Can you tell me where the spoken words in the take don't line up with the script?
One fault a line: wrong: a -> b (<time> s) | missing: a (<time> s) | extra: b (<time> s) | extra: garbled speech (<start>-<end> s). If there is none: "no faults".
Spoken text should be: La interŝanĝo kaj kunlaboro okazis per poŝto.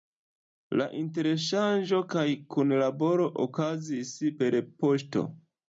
no faults